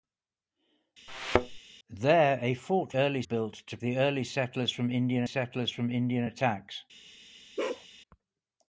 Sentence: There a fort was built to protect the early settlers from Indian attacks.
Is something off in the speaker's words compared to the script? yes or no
yes